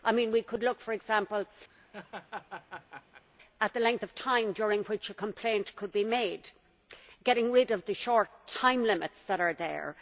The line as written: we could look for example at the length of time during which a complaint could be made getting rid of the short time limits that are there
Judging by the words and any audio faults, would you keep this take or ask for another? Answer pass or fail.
fail